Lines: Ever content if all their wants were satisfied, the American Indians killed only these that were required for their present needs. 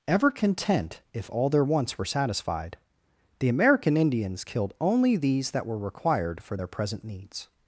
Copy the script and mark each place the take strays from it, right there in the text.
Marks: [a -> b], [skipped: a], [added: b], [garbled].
Ever content if all their wants were satisfied, the American Indians killed only these that were required for their present needs.